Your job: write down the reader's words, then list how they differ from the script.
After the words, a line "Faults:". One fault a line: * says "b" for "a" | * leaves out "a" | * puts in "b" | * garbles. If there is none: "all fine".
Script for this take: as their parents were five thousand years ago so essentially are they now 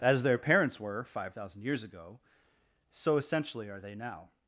as their parents were five thousand years ago so essentially are they now
Faults:
all fine